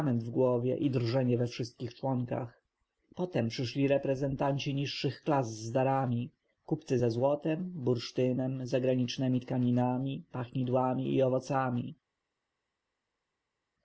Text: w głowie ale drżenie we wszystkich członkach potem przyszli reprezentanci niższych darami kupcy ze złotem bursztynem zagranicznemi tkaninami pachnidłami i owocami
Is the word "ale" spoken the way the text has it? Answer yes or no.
no